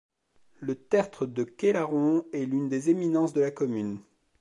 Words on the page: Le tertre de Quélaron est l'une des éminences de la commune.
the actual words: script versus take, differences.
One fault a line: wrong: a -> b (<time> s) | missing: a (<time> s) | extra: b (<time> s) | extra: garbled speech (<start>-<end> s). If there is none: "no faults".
no faults